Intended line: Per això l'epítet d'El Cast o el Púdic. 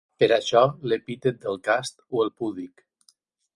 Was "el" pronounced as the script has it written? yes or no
yes